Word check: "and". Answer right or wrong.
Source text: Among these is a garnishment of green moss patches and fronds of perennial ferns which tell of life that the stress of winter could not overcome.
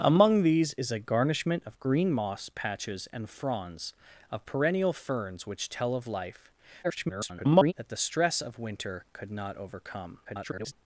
right